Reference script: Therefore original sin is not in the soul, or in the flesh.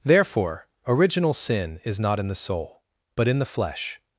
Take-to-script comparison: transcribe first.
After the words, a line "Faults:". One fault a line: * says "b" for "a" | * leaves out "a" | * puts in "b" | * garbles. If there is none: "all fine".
Therefore original sin is not in the soul, but in the flesh.
Faults:
* says "but" for "or"